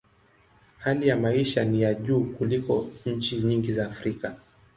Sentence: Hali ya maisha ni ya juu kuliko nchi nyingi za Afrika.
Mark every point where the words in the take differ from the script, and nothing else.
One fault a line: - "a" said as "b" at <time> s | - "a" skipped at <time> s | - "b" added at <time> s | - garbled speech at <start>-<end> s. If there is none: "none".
none